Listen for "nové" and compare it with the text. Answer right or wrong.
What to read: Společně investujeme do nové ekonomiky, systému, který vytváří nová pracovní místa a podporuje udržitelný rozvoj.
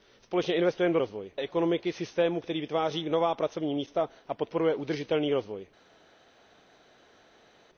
wrong